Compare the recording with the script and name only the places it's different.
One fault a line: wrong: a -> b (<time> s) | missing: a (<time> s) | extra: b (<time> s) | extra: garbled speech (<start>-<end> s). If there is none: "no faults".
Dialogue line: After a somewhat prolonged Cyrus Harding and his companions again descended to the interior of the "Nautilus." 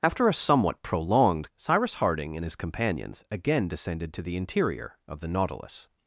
no faults